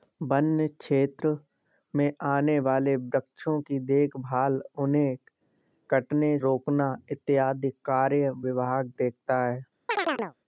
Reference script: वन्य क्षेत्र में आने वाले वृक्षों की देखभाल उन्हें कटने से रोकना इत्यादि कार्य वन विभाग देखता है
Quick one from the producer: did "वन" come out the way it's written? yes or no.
no